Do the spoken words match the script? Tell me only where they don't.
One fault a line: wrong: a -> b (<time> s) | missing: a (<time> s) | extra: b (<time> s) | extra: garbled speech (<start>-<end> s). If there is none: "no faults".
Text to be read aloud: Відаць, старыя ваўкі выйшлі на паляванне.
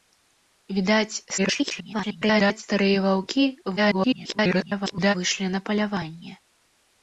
extra: garbled speech (1.4-2.6 s)
extra: garbled speech (3.8-5.1 s)